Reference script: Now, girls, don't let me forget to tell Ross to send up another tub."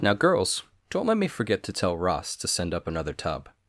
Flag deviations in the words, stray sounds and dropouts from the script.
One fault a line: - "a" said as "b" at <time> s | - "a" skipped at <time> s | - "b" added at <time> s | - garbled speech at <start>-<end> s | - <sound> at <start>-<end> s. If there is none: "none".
none